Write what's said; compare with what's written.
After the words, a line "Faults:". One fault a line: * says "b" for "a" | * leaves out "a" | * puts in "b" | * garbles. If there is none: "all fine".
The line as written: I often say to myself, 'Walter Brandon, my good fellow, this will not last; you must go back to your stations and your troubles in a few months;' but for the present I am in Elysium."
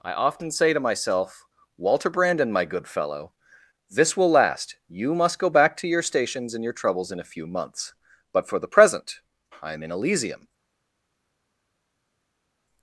I often say to myself, 'Walter Brandon, my good fellow, this will last; you must go back to your stations and your troubles in a few months;' but for the present I am in Elysium."
Faults:
* leaves out "not"